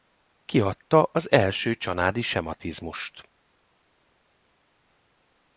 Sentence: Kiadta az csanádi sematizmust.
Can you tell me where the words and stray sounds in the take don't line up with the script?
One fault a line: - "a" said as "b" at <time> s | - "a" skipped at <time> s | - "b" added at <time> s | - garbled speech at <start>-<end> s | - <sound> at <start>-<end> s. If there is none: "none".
- "első" added at 1.3 s